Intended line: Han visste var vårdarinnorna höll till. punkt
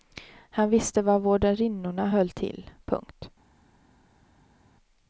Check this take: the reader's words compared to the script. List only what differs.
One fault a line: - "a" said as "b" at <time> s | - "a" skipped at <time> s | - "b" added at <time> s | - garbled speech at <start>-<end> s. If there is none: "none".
none